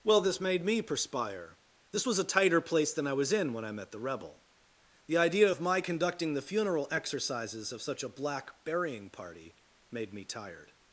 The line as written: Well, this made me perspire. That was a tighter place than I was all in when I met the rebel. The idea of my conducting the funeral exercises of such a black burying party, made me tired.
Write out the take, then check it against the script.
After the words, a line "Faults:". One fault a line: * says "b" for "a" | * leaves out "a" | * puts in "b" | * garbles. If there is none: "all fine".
Well, this made me perspire. This was a tighter place than I was in when I met the rebel. The idea of my conducting the funeral exercises of such a black burying party, made me tired.
Faults:
* says "This" for "That"
* leaves out "all"